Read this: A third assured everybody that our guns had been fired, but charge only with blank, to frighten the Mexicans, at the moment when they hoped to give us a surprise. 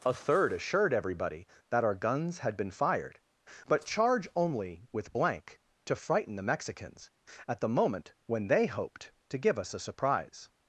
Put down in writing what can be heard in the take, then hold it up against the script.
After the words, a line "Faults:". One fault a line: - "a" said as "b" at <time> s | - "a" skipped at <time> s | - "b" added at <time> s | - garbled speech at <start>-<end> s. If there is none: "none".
A third assured everybody that our guns had been fired, but charge only with blank, to frighten the Mexicans, at the moment when they hoped to give us a surprise.
Faults:
none